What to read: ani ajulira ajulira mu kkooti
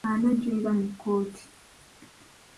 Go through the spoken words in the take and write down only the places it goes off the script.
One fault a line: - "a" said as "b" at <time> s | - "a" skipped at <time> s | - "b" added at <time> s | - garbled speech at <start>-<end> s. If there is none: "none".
- "ajulira" skipped at 0.7 s